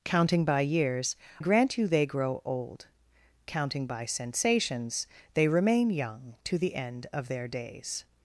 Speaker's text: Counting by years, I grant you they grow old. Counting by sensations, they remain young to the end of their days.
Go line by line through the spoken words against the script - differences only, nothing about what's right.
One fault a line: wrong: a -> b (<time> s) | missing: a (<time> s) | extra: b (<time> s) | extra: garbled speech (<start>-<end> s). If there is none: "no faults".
missing: I (1.1 s)